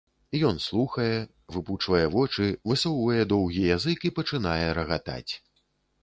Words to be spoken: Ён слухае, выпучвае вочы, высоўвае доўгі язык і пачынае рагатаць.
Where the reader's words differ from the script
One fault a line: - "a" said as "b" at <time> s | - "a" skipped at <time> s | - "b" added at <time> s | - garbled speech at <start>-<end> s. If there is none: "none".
none